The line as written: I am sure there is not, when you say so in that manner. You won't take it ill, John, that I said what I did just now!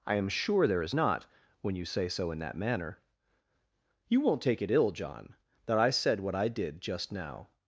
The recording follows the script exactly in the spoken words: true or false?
true